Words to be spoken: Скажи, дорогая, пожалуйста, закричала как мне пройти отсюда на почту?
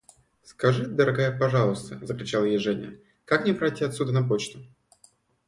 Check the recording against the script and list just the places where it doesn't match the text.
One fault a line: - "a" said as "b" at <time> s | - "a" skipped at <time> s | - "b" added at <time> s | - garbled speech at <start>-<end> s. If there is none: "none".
- "ей Женя" added at 2.5 s